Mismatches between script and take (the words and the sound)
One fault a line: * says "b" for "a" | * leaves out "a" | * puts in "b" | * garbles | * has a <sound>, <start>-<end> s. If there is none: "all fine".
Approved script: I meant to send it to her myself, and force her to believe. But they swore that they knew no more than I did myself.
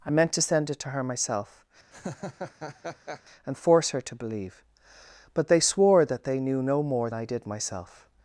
* has a laugh, 1.9-3.2 s
* leaves out "than"